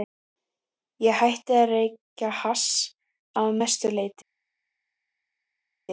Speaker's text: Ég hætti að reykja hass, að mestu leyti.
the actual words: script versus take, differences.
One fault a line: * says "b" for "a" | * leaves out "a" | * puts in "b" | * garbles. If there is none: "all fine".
all fine